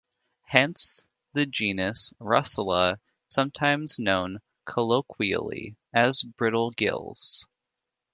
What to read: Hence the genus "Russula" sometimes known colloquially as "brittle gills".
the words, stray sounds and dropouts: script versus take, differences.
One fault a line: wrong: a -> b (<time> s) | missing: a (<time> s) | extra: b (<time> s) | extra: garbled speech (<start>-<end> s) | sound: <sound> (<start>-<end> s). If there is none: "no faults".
no faults